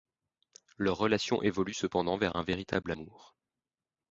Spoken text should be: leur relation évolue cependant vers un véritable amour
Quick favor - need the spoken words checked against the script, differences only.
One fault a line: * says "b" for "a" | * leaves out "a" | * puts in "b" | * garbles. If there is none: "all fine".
all fine